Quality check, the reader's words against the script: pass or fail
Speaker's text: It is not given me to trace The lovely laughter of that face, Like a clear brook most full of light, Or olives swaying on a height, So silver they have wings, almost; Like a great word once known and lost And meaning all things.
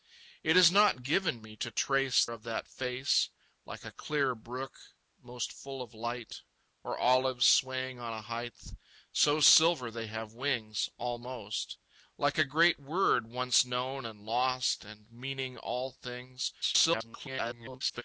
fail